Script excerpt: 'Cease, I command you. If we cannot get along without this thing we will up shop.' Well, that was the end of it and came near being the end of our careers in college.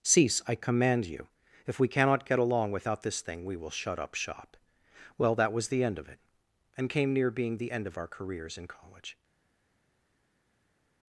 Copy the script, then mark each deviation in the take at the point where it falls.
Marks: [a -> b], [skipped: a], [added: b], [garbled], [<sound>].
'Cease, I command you. If we cannot get along without this thing we will [added: shut] up shop.' Well, that was the end of it and came near being the end of our careers in college.